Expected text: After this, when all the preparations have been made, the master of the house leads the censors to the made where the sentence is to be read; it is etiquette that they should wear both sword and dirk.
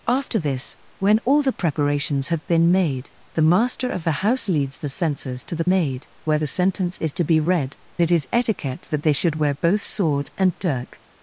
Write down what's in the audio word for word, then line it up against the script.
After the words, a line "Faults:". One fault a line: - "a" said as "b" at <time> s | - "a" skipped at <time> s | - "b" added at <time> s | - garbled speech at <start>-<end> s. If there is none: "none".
After this, when all the preparations have been made, the master of the house leads the censors to the made where the sentence is to be read; it is etiquette that they should wear both sword and dirk.
Faults:
none